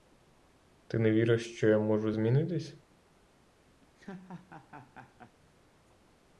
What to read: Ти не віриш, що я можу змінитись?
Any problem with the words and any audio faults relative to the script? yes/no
yes